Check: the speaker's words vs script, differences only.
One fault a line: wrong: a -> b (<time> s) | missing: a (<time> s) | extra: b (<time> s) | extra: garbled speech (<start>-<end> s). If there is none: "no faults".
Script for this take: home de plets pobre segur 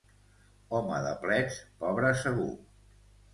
no faults